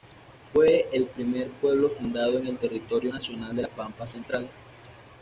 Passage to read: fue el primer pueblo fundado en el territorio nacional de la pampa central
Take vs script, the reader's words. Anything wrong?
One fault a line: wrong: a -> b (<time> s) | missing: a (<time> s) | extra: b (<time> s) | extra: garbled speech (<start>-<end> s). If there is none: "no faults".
no faults